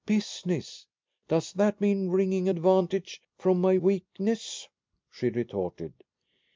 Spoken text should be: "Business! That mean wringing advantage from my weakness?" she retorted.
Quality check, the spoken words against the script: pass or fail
fail